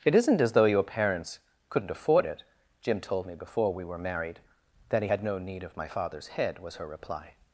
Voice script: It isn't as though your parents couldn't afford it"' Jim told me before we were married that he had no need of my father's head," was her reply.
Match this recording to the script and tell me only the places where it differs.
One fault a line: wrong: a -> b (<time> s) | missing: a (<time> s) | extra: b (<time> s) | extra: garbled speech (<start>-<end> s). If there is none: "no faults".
no faults